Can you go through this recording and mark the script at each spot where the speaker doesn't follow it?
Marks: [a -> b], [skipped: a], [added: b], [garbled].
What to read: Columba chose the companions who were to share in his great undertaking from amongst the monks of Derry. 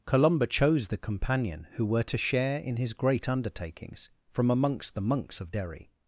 Columba chose the [companions -> companion] who were to share in his great [undertaking -> undertakings] from amongst the monks of Derry.